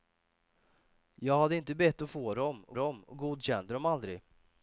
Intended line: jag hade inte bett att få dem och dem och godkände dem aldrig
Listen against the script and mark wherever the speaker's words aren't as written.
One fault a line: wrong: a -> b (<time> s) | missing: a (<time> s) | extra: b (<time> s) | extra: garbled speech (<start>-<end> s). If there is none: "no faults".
no faults